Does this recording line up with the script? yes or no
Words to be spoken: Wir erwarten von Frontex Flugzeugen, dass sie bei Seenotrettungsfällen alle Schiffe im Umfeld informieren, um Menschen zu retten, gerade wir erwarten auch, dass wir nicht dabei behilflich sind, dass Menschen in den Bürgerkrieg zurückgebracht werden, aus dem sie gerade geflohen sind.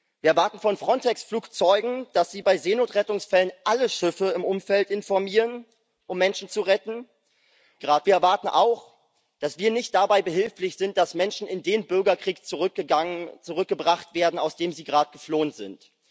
yes